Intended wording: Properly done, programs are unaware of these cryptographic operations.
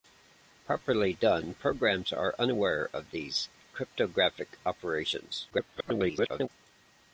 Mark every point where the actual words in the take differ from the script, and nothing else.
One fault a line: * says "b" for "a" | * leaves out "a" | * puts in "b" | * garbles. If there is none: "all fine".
* garbles